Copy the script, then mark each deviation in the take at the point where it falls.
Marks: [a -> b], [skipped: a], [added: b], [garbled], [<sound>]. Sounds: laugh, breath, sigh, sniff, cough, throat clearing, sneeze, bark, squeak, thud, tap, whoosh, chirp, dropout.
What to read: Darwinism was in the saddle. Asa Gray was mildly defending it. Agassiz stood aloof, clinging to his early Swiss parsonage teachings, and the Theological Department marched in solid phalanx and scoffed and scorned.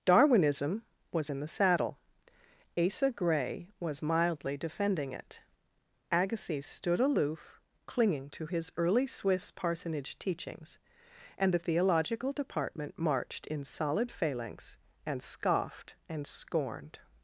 Darwinism was in the saddle. Asa Gray was mildly defending it. Agassiz stood aloof, clinging to his early Swiss parsonage teachings, and the Theological Department marched in solid phalanx and scoffed and scorned.